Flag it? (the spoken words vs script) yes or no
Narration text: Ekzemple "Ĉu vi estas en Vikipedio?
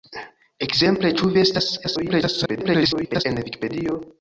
yes